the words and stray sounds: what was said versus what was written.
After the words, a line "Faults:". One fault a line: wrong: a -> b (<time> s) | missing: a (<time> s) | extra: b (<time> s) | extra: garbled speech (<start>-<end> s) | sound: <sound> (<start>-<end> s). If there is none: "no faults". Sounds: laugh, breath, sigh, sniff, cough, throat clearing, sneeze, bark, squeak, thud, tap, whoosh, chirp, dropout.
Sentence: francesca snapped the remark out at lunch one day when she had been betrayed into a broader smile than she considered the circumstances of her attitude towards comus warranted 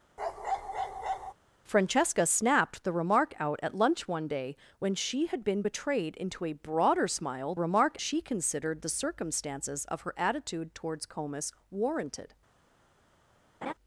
francesca snapped the remark out at lunch one day when she had been betrayed into a broader smile remark she considered the circumstances of her attitude towards comus warranted
Faults:
sound: bark (0.2-1.3 s)
wrong: than -> remark (7.6 s)
sound: laugh (13.6-13.7 s)